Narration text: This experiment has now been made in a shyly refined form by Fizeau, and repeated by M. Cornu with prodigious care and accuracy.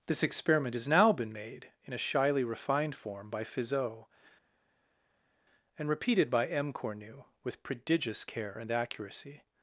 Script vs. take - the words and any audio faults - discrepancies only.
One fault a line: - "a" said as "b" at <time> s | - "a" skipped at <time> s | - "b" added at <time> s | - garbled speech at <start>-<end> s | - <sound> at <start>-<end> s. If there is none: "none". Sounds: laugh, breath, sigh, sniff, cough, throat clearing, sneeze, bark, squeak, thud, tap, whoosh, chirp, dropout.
none